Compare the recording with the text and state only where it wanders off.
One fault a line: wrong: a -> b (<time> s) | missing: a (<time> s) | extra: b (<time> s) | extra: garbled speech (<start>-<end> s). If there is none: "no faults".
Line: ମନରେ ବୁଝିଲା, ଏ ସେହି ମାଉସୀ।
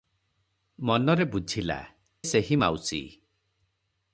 missing: ଏ (1.8 s)